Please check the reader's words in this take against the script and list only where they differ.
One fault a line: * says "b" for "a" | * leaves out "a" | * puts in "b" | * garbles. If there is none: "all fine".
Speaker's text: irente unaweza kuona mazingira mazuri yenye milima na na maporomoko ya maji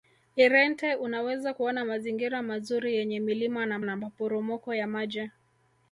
all fine